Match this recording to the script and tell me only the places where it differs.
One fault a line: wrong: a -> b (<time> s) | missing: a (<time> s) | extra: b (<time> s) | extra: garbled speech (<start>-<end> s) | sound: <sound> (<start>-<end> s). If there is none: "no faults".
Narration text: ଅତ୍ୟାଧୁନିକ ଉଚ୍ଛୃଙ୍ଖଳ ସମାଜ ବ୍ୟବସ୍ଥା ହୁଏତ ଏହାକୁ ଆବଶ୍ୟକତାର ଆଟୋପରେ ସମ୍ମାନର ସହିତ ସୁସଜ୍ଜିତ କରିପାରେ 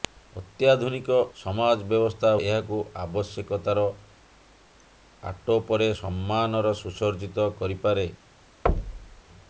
missing: ଉଚ୍ଛୃଙ୍ଖଳ (1.2 s)
missing: ହୁଏତ (2.3 s)
missing: ସହିତ (6.7 s)
sound: thud (8.7-9.2 s)